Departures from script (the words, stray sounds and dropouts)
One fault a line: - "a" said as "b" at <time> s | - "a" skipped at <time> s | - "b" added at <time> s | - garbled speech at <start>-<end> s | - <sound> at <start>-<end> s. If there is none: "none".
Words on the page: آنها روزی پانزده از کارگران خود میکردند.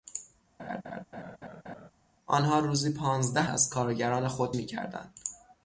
- laugh at 0.6-1.9 s